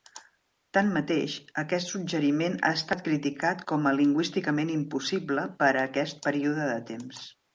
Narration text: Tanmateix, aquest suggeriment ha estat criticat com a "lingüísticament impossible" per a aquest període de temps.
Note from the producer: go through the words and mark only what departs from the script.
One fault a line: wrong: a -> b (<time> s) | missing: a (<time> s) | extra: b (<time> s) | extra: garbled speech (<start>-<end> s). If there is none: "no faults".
no faults